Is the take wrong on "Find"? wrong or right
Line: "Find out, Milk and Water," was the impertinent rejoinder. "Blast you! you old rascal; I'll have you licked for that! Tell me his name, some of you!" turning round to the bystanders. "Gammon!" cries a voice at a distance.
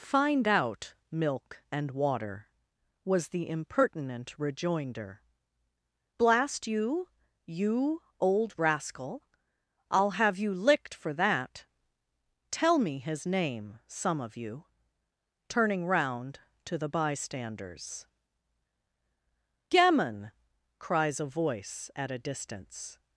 right